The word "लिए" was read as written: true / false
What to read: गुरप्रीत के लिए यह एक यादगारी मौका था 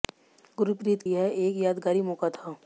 false